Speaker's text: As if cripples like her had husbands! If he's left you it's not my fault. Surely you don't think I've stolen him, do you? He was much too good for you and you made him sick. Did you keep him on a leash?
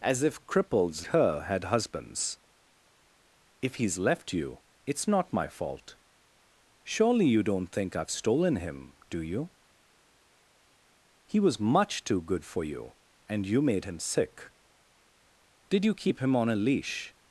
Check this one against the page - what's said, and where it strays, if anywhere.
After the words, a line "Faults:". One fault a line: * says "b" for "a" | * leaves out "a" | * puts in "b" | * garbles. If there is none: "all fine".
As if cripples her had husbands! If he's left you it's not my fault. Surely you don't think I've stolen him, do you? He was much too good for you and you made him sick. Did you keep him on a leash?
Faults:
* leaves out "like"